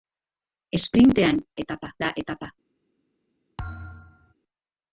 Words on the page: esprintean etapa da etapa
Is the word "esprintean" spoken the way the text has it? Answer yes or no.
yes